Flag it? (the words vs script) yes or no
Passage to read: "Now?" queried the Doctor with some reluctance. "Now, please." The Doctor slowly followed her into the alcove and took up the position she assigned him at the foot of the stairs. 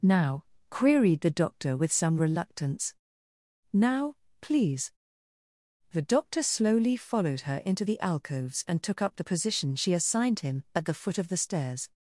yes